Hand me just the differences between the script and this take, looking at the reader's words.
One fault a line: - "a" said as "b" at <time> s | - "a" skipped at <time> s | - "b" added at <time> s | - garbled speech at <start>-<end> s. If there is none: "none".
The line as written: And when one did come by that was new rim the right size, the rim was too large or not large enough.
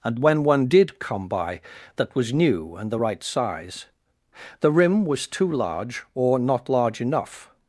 - "rim" said as "and" at 2.8 s